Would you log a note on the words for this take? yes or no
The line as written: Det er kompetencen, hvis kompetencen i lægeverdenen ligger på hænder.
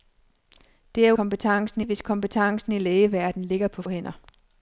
no